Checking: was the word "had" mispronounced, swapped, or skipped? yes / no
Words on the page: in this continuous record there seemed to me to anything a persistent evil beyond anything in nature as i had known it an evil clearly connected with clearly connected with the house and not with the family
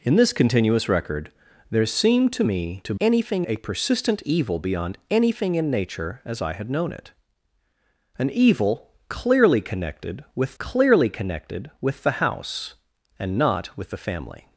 no